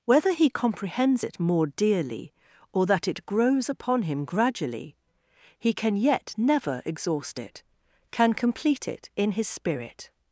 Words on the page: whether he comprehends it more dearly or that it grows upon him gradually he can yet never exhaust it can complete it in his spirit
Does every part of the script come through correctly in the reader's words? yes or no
yes